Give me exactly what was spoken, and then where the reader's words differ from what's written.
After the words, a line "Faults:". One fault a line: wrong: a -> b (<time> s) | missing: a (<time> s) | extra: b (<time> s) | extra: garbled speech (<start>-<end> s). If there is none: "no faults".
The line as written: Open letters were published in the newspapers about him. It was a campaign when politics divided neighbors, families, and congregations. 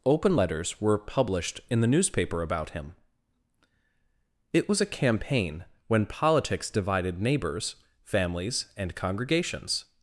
Open letters were published in the newspaper about him. It was a campaign when politics divided neighbors, families, and congregations.
Faults:
wrong: newspapers -> newspaper (1.9 s)